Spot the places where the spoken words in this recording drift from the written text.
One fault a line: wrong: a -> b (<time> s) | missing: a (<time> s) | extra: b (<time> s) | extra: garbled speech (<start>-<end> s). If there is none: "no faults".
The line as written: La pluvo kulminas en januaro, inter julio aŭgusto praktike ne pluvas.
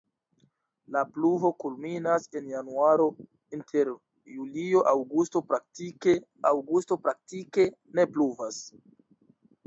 extra: aŭgusto praktike (6.5 s)